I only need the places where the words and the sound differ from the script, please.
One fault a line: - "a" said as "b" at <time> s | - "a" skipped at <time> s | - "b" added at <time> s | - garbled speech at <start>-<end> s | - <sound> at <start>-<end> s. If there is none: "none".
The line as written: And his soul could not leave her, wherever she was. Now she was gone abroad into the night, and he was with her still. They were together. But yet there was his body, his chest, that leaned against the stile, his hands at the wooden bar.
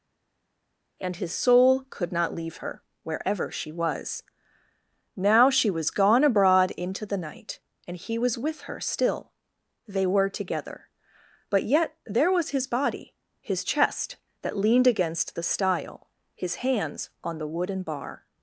- "at" said as "on" at 17.2 s